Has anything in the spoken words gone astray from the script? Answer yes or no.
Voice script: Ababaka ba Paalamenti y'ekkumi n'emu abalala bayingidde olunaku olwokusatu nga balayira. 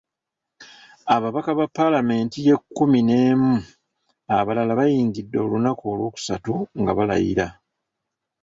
no